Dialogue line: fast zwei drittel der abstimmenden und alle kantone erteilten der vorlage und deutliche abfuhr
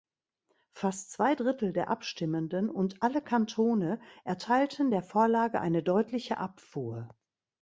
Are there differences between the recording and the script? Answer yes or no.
yes